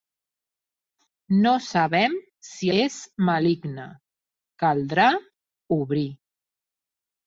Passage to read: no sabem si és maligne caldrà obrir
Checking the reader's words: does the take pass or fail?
pass